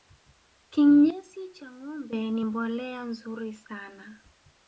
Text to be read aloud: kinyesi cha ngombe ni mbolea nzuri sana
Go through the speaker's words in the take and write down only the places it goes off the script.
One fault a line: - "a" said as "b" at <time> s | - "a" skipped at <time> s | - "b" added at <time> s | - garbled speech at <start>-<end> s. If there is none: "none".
none